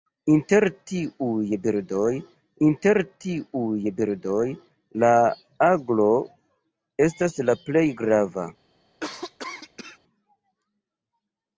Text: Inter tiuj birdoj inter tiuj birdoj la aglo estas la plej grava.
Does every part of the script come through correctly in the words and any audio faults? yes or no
no